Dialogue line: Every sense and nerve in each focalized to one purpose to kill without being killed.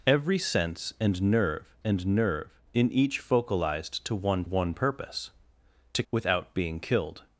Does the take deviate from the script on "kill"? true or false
true